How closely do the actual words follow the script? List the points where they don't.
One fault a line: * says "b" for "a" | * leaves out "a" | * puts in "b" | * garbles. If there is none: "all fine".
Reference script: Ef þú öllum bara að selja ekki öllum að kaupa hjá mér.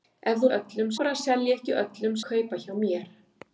all fine